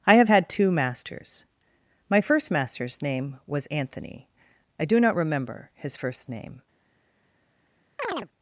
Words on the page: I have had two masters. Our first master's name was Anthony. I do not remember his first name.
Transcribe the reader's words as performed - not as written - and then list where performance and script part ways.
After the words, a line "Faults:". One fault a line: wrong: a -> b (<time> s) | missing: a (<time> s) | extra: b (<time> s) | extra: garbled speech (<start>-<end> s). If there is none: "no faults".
I have had two masters. My first master's name was Anthony. I do not remember his first name.
Faults:
wrong: Our -> My (2.1 s)